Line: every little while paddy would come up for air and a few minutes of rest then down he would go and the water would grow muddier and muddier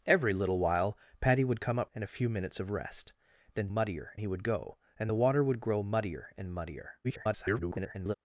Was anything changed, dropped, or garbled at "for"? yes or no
yes